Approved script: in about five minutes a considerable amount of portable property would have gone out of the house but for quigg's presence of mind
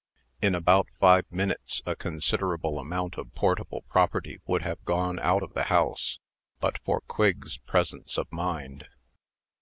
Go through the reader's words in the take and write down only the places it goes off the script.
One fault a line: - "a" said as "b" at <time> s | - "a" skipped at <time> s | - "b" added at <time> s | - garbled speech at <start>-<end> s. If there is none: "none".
none